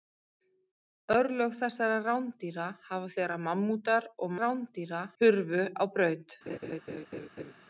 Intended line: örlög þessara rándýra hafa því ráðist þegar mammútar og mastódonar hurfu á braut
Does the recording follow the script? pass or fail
fail